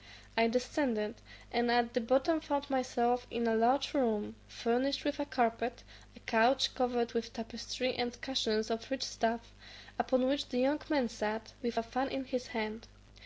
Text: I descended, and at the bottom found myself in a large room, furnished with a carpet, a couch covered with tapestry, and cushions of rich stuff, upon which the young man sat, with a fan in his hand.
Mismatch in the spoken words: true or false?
false